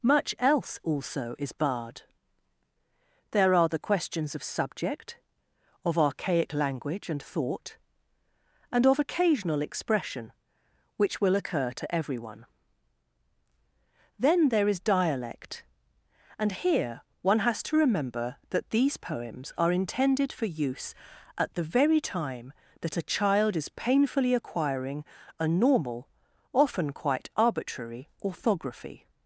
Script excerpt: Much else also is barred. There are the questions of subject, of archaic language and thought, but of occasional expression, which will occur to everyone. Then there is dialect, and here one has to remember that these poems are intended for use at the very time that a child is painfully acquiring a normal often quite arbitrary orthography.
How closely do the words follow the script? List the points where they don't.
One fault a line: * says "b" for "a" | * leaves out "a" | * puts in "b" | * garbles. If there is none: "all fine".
* says "and" for "but"